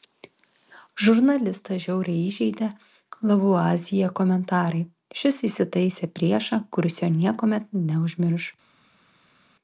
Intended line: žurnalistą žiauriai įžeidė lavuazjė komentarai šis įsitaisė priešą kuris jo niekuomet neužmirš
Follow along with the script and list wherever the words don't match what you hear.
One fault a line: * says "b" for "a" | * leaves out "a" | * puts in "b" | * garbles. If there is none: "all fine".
all fine